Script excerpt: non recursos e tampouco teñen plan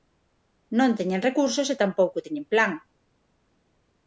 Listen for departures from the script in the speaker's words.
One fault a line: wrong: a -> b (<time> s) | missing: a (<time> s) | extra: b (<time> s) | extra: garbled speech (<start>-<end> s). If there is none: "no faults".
extra: teñen (1.0 s)